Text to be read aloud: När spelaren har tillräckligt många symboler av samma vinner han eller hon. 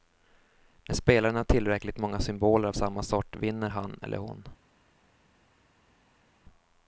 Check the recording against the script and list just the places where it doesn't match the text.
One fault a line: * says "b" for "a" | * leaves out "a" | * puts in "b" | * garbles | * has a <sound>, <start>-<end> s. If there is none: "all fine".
* puts in "sort"